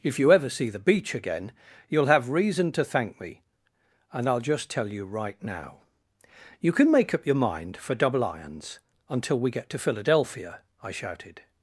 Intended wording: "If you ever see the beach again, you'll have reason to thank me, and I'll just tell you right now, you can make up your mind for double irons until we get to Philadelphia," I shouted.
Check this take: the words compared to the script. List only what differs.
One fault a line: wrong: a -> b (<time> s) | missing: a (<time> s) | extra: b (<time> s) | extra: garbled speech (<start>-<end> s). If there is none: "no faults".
no faults